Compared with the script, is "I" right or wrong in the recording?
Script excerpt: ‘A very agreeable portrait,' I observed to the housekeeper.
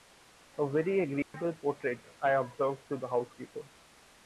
right